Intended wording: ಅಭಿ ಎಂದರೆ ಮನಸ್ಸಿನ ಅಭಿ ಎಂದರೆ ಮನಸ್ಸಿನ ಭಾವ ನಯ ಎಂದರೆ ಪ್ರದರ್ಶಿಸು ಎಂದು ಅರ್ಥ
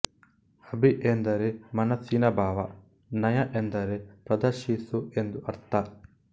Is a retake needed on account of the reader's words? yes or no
yes